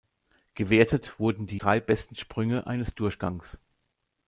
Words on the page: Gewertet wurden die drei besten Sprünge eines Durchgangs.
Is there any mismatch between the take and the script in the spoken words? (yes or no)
no